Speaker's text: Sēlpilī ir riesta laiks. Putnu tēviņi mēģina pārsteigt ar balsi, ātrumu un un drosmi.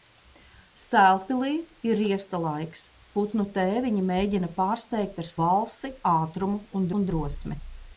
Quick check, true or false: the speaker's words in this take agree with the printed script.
true